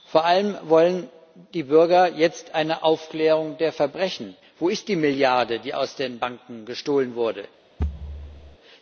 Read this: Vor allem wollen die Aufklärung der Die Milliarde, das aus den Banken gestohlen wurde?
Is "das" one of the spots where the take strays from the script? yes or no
yes